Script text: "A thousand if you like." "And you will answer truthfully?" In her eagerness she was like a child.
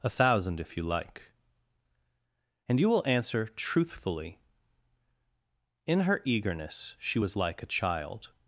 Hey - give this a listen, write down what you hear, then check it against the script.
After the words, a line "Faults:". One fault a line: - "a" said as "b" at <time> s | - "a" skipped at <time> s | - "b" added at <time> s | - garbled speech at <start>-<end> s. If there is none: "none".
"A thousand if you like." "And you will answer truthfully?" In her eagerness she was like a child.
Faults:
none